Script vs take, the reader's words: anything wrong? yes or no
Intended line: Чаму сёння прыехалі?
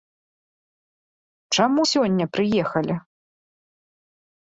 no